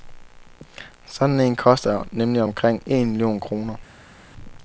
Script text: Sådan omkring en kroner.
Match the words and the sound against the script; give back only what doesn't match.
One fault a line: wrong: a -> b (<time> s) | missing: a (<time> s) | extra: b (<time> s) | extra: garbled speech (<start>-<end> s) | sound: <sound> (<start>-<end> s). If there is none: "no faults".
extra: en koster nemlig (1.4 s)
extra: million (3.1 s)